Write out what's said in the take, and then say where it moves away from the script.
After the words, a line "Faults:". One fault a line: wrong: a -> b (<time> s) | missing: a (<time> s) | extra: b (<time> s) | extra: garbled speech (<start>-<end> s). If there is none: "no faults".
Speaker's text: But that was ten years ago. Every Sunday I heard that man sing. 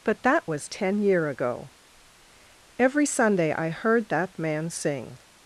But that was ten year ago. Every Sunday I heard that man sing.
Faults:
wrong: years -> year (1.0 s)